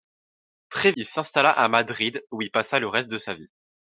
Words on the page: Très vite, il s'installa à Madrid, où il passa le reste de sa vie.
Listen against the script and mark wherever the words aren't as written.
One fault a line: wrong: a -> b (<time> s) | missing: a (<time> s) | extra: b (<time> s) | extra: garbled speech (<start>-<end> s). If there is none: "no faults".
missing: vite (0.9 s)